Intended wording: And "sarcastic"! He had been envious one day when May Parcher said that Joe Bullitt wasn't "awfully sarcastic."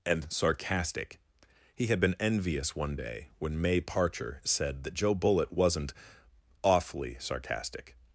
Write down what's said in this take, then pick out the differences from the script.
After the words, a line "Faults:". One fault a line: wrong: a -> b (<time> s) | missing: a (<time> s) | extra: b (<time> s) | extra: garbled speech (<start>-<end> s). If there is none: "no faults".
And "sarcastic"! He had been envious one day when May Parcher said that Joe Bullitt wasn't "awfully sarcastic."
Faults:
no faults